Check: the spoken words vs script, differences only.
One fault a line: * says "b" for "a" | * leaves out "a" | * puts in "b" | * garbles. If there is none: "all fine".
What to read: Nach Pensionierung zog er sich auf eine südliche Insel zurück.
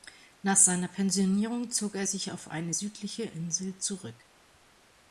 * puts in "seiner"